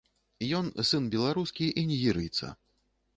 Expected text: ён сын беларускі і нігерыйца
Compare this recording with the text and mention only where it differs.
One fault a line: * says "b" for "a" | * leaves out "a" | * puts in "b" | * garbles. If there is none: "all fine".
all fine